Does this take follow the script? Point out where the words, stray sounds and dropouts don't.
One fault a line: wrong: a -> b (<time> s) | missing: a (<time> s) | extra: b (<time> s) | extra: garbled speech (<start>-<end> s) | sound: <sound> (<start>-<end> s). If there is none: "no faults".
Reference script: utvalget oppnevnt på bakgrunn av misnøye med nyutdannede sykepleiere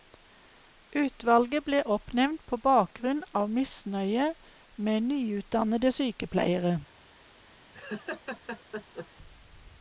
extra: ble (1.7 s)
sound: laugh (7.7-9.1 s)